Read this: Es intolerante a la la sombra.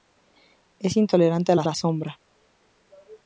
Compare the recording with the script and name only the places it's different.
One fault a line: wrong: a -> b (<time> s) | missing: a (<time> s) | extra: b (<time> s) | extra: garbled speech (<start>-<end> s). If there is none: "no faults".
no faults